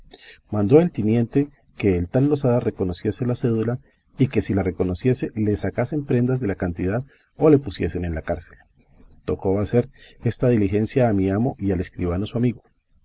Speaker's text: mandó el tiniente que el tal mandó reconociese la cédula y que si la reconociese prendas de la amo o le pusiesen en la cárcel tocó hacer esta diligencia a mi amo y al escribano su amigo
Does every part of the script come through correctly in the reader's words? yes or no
no